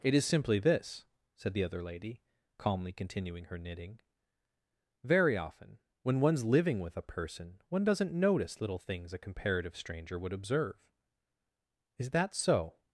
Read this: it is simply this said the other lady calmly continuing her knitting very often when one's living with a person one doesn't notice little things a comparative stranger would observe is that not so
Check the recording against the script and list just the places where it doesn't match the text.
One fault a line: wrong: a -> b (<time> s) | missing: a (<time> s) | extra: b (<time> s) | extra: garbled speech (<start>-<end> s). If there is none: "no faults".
missing: not (12.3 s)